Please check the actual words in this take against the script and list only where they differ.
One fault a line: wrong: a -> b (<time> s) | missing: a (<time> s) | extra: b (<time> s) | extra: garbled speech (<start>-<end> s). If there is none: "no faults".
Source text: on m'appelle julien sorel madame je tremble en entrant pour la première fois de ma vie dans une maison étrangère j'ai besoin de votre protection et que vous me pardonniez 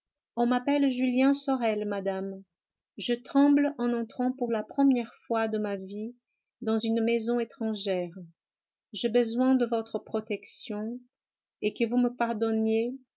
no faults